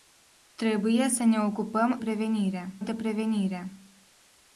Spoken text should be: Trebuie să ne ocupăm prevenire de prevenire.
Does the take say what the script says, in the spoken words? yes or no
yes